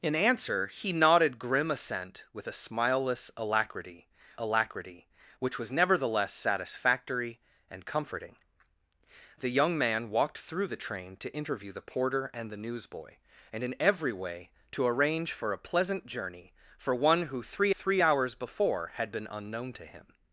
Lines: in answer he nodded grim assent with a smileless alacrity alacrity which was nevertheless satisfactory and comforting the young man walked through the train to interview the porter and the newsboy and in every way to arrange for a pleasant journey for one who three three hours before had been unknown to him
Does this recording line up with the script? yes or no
yes